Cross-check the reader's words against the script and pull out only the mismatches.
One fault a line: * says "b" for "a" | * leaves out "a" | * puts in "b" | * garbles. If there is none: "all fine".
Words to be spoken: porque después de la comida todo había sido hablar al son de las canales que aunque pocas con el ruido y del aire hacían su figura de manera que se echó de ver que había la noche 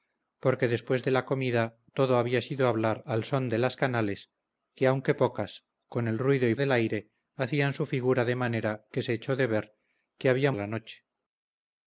all fine